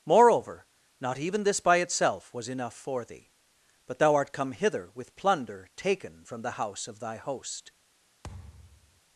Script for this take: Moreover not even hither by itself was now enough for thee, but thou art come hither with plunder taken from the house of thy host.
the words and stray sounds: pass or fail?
fail